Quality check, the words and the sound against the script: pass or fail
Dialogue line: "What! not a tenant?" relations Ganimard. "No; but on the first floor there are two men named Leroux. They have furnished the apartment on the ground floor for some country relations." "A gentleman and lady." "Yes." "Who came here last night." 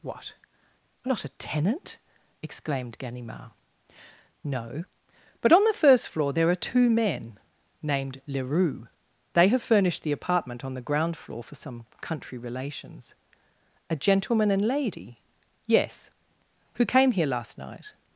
fail